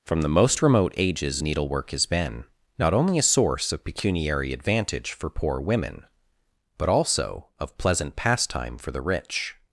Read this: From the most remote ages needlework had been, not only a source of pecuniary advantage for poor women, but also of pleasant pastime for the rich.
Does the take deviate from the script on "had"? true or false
true